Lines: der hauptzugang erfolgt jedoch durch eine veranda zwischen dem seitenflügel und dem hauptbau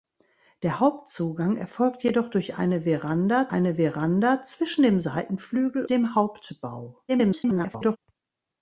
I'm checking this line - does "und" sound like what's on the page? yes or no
no